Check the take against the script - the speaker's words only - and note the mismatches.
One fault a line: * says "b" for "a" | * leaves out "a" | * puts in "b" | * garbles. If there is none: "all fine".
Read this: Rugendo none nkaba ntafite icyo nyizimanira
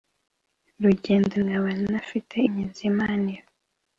* leaves out "none"
* leaves out "icyo"